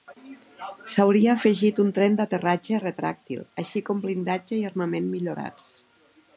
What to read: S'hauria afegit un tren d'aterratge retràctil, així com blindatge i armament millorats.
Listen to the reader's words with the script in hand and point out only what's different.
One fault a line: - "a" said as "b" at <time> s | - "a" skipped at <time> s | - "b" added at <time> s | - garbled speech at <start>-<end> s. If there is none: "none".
none